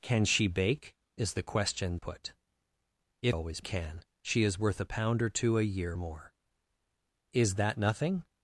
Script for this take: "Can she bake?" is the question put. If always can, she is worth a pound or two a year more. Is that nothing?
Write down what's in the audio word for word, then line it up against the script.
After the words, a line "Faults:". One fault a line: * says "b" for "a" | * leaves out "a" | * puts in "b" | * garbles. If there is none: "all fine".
"Can she bake?" is the question put. If always can, she is worth a pound or two a year more. Is that nothing?
Faults:
all fine